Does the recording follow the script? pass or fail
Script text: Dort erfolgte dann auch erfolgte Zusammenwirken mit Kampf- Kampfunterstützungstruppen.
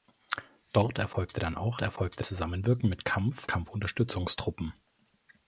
pass